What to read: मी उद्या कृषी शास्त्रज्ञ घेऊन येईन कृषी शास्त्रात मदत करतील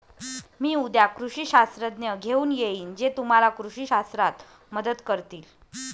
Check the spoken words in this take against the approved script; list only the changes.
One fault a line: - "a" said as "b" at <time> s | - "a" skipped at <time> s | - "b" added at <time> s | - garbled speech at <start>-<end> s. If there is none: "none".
- "जे तुम्हाला" added at 3.0 s